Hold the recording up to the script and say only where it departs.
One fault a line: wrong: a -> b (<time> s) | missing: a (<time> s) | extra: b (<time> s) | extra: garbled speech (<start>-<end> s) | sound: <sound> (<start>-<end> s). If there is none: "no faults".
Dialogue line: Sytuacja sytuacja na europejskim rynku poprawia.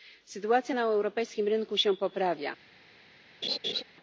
missing: sytuacja (0.8 s)
extra: się (1.8 s)
sound: laugh (3.4-3.8 s)